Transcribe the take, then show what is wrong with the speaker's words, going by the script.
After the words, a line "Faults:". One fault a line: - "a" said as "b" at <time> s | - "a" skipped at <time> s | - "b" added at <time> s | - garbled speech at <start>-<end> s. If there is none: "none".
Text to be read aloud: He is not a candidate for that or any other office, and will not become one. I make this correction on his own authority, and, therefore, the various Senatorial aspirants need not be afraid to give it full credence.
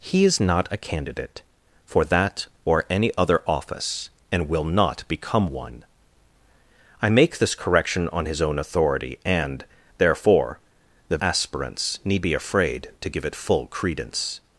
He is not a candidate for that or any other office, and will not become one. I make this correction on his own authority, and, therefore, the aspirants need be afraid to give it full credence.
Faults:
- "various Senatorial" skipped at 11.2 s
- "not" skipped at 12.3 s